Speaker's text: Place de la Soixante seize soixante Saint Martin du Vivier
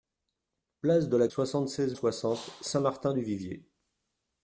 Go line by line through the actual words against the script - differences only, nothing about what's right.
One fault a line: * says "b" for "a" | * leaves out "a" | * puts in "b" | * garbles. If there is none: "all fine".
all fine